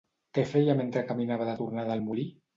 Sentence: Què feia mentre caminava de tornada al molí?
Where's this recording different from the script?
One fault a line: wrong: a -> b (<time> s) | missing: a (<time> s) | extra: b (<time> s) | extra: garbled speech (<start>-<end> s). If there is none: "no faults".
no faults